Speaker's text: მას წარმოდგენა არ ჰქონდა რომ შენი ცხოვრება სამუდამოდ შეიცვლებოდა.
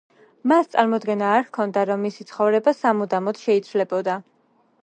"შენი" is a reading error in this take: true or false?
true